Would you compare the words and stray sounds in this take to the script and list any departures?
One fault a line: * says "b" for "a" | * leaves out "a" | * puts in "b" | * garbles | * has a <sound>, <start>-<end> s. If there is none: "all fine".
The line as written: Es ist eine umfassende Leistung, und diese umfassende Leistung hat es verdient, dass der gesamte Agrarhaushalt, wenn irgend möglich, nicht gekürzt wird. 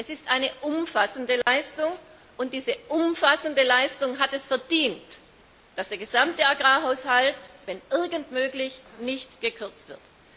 * has a dropout, 1.4-1.5 s